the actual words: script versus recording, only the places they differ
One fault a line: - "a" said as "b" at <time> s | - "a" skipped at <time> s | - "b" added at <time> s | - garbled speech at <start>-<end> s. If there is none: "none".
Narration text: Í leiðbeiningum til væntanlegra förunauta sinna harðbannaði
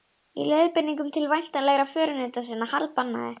none